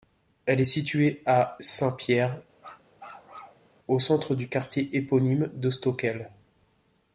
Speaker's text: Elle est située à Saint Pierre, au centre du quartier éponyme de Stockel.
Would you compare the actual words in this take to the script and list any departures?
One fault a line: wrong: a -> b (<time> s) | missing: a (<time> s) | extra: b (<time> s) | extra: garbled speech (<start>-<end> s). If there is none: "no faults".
no faults